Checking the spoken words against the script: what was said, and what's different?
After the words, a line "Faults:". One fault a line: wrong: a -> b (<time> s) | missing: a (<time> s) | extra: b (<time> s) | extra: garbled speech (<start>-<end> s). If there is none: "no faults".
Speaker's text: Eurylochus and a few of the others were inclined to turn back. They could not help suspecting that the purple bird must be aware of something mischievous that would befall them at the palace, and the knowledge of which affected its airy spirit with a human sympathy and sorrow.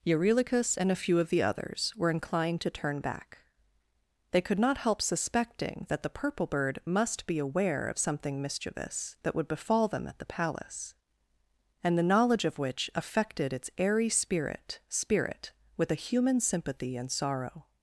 Eurylochus and a few of the others were inclined to turn back. They could not help suspecting that the purple bird must be aware of something mischievous that would befall them at the palace, and the knowledge of which affected its airy spirit spirit with a human sympathy and sorrow.
Faults:
extra: spirit (14.9 s)